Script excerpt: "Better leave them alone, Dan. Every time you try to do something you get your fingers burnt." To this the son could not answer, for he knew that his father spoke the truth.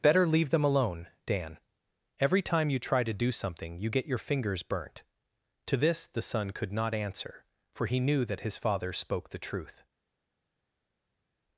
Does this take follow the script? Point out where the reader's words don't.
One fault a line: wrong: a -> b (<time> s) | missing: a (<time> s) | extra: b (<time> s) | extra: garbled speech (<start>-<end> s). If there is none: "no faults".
no faults